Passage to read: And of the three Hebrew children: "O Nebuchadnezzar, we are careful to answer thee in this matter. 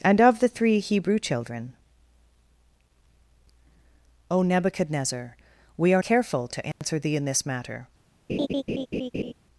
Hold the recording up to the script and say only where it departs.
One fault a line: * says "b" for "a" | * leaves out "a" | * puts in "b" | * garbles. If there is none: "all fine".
all fine